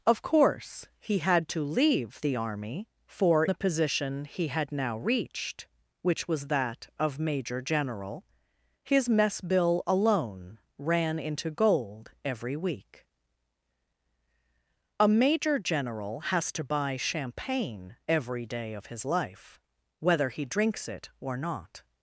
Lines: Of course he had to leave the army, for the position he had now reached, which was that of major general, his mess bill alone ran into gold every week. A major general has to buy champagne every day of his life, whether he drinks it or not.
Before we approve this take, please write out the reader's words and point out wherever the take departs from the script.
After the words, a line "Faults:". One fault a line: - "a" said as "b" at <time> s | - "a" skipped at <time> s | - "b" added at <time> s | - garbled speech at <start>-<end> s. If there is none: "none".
Of course he had to leave the army, for the position he had now reached, which was that of major general, his mess bill alone ran into gold every week. A major general has to buy champagne every day of his life, whether he drinks it or not.
Faults:
none